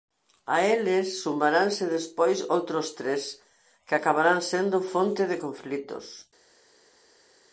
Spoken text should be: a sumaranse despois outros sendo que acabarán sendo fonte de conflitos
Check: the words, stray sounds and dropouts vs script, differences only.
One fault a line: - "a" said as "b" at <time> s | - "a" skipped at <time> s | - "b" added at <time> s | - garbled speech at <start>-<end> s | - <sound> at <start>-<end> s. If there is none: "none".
- "eles" added at 0.7 s
- "sendo" said as "tres" at 3.0 s